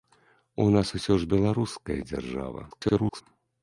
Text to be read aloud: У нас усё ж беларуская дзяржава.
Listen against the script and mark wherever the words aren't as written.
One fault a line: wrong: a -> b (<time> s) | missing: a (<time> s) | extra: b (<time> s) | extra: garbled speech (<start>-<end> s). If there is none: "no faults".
extra: garbled speech (2.7-3.2 s)